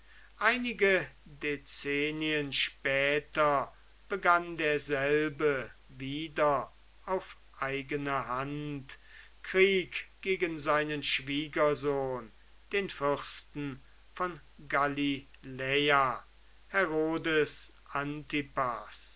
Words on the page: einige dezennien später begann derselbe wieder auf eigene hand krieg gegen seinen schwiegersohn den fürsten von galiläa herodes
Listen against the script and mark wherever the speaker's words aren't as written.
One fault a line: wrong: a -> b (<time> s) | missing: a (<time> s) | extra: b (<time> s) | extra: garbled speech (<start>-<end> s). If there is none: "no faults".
no faults